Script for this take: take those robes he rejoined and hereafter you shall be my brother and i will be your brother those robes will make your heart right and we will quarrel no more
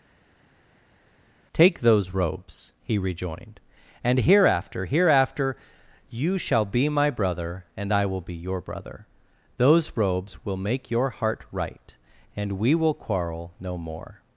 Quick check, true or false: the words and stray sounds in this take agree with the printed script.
false